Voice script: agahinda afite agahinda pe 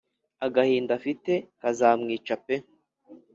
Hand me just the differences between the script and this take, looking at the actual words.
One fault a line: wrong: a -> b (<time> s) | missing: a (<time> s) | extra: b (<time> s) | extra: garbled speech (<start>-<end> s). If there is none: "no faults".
wrong: agahinda -> kazamwica (1.6 s)